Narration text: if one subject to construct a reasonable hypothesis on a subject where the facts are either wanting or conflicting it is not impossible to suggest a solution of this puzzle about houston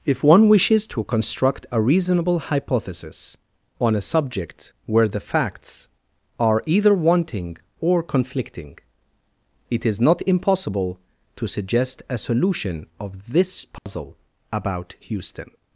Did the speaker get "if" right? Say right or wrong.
right